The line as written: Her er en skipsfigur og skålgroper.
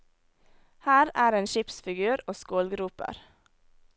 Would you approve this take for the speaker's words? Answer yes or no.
yes